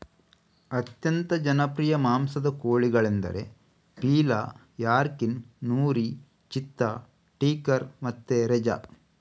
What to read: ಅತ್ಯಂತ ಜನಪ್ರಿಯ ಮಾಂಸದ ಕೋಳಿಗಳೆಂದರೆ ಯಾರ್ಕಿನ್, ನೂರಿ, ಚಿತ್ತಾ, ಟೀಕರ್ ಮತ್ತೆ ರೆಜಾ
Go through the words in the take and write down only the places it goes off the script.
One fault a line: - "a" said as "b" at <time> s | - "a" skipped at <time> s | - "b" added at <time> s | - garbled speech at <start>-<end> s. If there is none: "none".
- "ಪೀಲಾ" added at 4.0 s